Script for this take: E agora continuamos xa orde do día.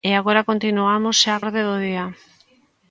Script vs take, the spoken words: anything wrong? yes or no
no